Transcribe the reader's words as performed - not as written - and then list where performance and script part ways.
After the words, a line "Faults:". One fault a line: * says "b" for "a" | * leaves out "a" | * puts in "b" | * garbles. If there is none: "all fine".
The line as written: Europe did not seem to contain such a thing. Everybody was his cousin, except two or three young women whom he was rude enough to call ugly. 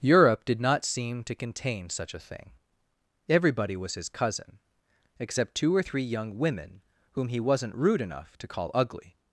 Europe did not seem to contain such a thing. Everybody was his cousin, except two or three young women whom he wasn't rude enough to call ugly.
Faults:
* says "wasn't" for "was"